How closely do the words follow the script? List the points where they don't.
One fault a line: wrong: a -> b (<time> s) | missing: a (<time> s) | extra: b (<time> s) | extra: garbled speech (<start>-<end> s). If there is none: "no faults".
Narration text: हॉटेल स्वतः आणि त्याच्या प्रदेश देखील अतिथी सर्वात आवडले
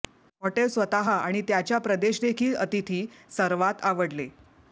no faults